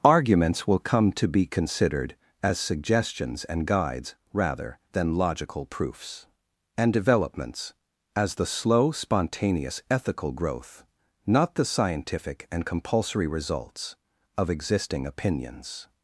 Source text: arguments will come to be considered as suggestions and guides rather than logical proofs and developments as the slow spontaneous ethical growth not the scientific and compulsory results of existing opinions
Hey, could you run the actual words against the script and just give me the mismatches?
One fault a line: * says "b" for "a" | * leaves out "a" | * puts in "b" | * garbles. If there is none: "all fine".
all fine